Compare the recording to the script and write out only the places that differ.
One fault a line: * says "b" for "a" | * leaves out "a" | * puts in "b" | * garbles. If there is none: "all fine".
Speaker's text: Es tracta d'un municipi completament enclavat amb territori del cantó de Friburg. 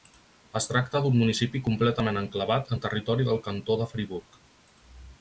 * says "en" for "amb"